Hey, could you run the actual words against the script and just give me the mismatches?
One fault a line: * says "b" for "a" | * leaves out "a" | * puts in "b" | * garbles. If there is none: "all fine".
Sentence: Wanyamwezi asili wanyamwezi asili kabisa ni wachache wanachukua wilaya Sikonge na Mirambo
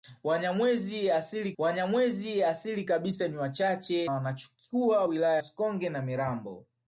all fine